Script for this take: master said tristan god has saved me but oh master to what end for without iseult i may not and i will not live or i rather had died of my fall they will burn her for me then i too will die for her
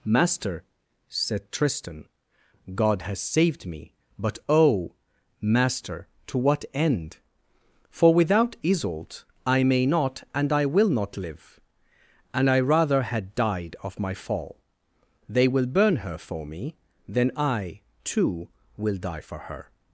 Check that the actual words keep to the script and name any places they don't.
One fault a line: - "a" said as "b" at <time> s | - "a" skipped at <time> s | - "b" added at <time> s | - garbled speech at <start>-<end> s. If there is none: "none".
- "or" said as "and" at 12.3 s